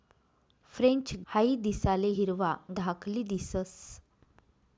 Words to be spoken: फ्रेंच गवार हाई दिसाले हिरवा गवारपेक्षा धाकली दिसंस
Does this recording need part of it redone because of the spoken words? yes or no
yes